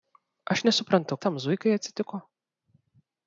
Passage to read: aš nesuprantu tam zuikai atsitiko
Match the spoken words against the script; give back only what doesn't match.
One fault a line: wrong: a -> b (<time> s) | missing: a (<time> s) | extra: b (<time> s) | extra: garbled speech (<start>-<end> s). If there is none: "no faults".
no faults